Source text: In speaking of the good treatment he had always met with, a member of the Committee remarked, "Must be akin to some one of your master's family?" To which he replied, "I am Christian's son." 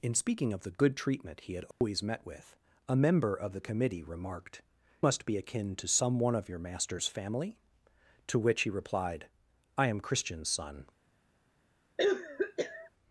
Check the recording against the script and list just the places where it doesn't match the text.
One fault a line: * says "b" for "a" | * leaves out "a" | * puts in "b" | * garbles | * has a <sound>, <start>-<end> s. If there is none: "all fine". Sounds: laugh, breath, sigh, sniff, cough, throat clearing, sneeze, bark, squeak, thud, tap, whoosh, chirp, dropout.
* has a dropout, 1.7-1.8 s
* has a cough, 12.0-12.9 s